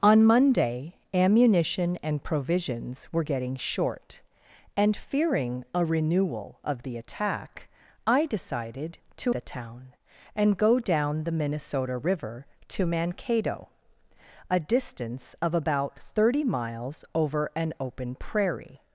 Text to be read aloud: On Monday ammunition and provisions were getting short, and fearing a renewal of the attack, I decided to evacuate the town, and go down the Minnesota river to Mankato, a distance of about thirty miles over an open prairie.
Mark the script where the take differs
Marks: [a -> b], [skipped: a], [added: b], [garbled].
On Monday ammunition and provisions were getting short, and fearing a renewal of the attack, I decided to [skipped: evacuate] the town, and go down the Minnesota river to Mankato, a distance of about thirty miles over an open prairie.